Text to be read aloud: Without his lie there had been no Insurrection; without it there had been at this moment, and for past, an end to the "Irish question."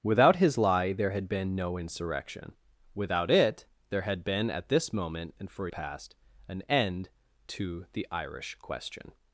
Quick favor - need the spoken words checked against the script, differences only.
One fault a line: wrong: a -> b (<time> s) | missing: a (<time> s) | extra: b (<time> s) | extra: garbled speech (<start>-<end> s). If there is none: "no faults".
no faults